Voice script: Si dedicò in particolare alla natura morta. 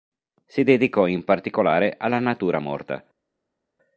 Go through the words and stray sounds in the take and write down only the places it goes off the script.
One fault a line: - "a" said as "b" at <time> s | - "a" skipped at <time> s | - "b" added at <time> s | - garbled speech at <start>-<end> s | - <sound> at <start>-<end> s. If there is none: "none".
none